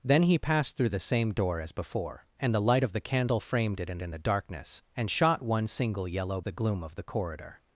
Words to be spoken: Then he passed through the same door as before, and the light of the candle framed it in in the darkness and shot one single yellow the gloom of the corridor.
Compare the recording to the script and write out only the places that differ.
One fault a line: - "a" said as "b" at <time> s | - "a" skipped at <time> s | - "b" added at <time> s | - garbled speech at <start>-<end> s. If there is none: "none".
none